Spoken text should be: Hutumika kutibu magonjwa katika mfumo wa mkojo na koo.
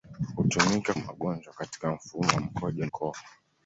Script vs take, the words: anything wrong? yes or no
yes